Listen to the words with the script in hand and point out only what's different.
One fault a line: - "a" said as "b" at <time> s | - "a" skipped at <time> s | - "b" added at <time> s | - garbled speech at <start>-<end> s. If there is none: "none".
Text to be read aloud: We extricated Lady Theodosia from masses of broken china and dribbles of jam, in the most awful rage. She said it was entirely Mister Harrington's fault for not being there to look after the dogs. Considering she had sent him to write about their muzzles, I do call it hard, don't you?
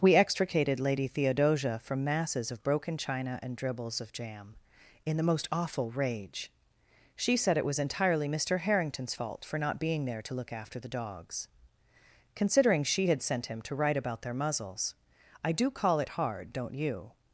none